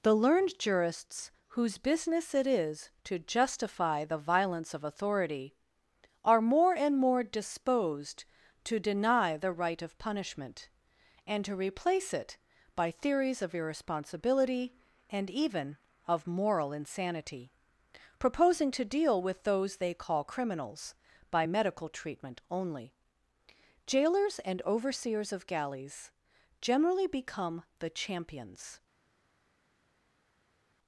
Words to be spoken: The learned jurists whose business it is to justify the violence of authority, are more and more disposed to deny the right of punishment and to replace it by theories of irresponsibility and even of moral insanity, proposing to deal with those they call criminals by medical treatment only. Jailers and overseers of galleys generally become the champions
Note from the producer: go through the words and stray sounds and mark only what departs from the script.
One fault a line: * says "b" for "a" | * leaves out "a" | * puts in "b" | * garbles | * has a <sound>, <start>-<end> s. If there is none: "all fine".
all fine